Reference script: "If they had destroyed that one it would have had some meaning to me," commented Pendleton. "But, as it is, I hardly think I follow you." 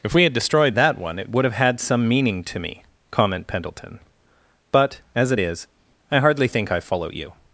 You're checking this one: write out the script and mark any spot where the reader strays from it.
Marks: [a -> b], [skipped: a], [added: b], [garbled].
"If [they -> we] had destroyed that one it would have had some meaning to me," [commented -> comment] Pendleton. "But, as it is, I hardly think I follow you."